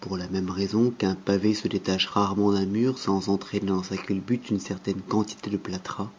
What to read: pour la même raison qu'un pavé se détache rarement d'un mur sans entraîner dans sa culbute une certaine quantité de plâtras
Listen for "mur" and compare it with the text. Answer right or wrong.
right